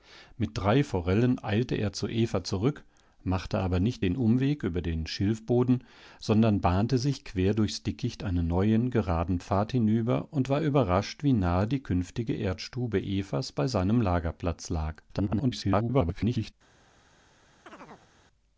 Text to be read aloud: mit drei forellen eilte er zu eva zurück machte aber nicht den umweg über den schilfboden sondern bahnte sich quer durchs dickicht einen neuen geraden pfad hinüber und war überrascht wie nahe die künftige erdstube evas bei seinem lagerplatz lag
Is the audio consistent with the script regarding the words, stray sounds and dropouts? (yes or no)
no